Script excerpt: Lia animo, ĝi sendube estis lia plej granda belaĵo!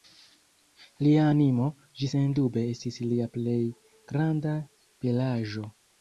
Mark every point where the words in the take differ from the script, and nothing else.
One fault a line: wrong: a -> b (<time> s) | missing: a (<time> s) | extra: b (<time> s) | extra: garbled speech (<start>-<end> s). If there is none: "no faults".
no faults